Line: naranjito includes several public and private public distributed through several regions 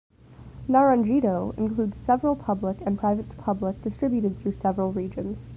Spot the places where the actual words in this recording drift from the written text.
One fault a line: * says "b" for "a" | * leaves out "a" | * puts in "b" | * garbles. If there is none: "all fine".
all fine